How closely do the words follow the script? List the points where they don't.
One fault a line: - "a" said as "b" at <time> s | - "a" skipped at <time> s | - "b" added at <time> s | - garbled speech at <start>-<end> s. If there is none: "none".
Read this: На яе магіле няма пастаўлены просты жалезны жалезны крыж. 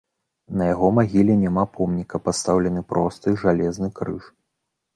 - "яе" said as "яго" at 0.7 s
- "помніка" added at 1.8 s
- "жалезны" skipped at 3.9 s